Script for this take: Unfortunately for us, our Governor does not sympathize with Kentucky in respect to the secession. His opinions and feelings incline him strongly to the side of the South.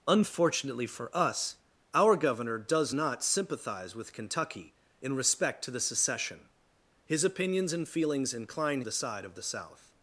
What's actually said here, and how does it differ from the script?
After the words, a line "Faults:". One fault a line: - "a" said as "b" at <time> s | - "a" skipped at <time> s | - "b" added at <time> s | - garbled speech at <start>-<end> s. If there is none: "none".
Unfortunately for us, our Governor does not sympathize with Kentucky in respect to the secession. His opinions and feelings incline the side of the South.
Faults:
- "him strongly to" skipped at 8.8 s